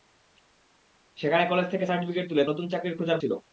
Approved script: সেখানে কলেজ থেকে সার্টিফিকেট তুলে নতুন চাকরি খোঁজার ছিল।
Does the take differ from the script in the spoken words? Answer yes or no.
no